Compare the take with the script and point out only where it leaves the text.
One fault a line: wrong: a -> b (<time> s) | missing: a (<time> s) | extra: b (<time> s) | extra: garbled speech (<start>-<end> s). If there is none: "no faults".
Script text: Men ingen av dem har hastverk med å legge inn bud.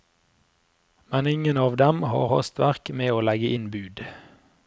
no faults